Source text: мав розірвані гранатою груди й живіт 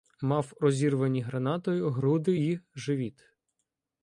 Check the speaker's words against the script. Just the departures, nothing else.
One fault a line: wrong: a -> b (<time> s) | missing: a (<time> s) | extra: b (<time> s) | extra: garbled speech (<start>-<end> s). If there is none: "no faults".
no faults